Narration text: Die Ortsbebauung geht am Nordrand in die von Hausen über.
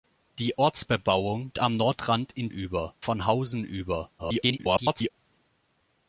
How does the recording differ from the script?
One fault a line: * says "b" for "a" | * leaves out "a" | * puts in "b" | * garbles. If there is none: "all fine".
* leaves out "geht"
* says "über" for "die"
* garbles